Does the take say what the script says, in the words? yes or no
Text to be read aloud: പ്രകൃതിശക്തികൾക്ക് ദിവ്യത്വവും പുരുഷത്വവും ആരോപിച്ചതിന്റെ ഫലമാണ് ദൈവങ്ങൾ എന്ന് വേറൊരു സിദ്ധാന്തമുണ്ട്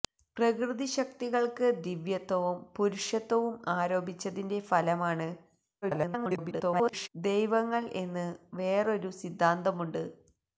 no